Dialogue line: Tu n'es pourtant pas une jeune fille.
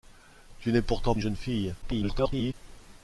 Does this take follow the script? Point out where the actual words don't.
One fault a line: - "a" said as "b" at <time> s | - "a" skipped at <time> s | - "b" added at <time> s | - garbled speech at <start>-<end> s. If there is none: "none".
- "pas" skipped at 1.1 s
- garbled speech at 1.8-2.5 s